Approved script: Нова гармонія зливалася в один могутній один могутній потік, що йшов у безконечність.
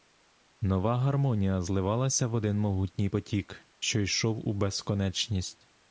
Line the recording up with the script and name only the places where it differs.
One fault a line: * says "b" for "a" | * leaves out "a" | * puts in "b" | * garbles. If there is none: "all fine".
* leaves out "один могутній"